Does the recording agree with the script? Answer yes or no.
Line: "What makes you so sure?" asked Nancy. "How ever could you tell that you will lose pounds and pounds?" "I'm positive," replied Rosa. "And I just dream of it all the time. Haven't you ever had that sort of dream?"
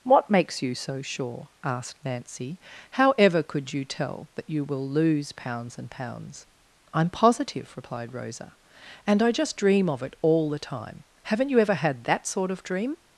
yes